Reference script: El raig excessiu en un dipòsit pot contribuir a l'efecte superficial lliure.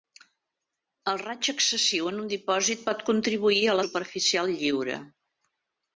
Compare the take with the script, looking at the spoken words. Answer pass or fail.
fail